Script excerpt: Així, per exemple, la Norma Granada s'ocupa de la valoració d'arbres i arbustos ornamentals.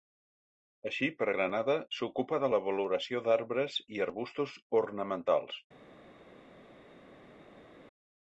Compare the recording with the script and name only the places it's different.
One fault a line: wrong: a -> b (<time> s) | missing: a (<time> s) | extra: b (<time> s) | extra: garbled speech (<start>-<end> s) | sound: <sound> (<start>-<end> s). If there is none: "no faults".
missing: exemple la Norma (1.3 s)